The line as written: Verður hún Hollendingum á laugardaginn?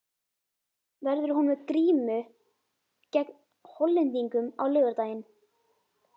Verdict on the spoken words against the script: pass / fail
fail